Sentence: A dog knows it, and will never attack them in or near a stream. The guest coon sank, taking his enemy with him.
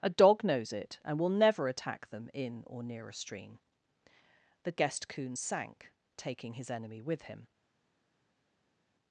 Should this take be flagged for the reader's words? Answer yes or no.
no